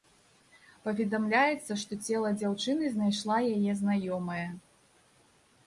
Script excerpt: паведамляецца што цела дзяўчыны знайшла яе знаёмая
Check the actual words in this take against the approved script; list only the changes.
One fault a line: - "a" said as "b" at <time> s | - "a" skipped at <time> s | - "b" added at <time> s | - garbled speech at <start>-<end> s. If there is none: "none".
none